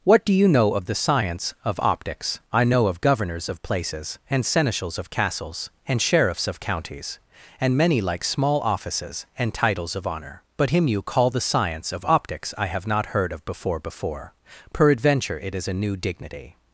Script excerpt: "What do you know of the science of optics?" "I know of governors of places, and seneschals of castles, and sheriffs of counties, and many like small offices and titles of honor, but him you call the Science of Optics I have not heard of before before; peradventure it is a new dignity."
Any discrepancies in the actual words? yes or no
no